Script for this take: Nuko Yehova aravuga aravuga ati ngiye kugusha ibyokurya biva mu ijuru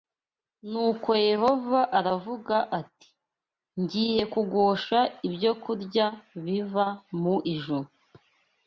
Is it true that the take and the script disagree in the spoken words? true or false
true